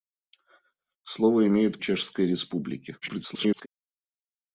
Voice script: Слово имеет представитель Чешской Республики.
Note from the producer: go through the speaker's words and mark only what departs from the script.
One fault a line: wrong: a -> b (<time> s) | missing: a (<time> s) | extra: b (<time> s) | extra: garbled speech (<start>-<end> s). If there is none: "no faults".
missing: представитель (1.8 s)
extra: garbled speech (3.0-3.7 s)